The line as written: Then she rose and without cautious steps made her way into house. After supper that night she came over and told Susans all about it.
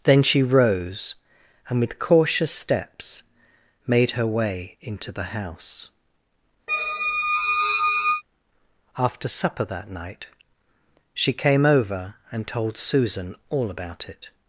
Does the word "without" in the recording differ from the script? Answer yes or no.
yes